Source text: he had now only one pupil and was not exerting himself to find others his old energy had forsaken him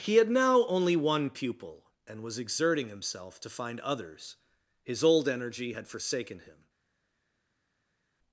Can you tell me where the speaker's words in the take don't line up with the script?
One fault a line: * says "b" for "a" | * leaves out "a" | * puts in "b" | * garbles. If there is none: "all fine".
* leaves out "not"